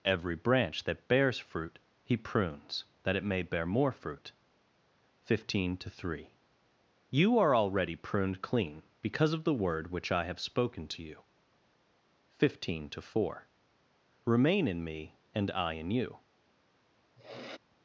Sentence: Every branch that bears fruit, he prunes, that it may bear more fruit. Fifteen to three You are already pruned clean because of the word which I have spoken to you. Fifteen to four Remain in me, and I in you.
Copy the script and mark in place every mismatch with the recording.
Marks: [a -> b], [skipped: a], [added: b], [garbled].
Every branch that bears fruit, he prunes, that it may bear more fruit. Fifteen to three You are already pruned clean because of the word which I have spoken to you. Fifteen to four Remain in me, and I in you.